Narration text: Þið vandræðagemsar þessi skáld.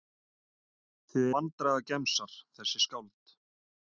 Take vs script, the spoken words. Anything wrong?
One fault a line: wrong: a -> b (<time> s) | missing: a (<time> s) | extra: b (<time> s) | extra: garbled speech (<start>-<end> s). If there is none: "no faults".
no faults